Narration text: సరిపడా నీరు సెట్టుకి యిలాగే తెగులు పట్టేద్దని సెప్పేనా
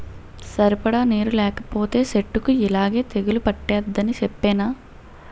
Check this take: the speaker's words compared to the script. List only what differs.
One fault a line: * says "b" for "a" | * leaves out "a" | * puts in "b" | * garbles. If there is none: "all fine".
* puts in "లేకపోతే"